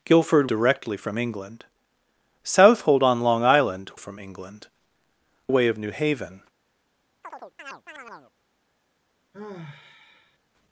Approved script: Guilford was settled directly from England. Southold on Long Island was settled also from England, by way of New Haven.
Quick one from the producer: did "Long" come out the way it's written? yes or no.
yes